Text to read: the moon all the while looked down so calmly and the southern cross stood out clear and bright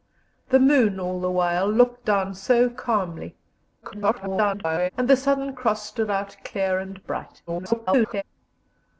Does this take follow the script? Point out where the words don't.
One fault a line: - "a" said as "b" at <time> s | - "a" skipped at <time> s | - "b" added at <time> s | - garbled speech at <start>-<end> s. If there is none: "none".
- garbled speech at 3.8-4.9 s
- garbled speech at 7.5-8.2 s